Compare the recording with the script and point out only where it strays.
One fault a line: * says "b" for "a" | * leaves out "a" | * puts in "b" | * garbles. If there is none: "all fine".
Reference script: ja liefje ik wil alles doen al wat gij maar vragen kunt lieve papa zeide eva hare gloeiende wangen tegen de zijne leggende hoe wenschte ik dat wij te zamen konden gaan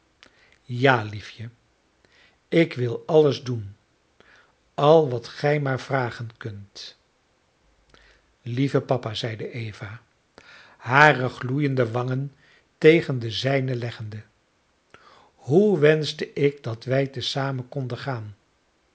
all fine